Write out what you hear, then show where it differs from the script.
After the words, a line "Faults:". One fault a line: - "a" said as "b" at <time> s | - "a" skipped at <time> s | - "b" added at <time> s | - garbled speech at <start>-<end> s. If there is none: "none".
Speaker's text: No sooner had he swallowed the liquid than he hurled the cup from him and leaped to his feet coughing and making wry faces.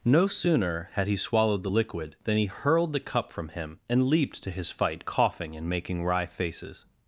No sooner had he swallowed the liquid than he hurled the cup from him and leaped to his fight coughing and making wry faces.
Faults:
- "feet" said as "fight" at 4.7 s